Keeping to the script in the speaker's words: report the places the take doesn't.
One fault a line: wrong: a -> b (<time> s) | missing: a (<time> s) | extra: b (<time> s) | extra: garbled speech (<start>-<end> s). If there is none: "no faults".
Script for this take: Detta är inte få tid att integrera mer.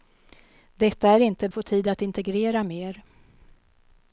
no faults